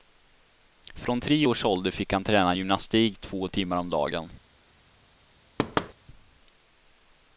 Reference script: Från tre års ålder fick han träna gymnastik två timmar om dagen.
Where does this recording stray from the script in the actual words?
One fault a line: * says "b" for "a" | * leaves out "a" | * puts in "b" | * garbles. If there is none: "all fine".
all fine